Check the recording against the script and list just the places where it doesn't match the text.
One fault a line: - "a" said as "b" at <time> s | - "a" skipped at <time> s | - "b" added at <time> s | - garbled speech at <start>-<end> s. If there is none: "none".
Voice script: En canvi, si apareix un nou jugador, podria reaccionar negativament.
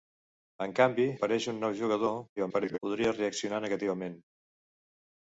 - "si" skipped at 1.1 s
- garbled speech at 2.4-2.8 s